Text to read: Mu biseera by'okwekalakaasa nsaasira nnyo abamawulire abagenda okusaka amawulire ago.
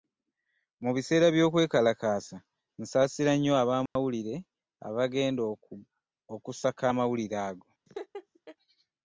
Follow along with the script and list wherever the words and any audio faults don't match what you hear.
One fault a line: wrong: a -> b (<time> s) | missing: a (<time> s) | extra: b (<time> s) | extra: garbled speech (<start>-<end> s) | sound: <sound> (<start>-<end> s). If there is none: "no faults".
sound: dropout (3.9-4.0 s)
sound: laugh (7.9-8.6 s)